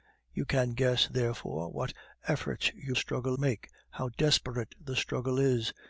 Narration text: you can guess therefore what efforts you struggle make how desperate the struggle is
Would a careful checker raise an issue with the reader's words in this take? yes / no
no